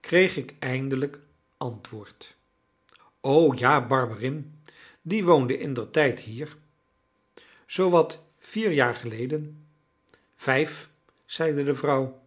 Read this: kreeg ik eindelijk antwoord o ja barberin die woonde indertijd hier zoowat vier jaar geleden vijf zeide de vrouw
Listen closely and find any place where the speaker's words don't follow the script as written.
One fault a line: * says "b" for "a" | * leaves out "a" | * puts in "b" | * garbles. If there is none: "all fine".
all fine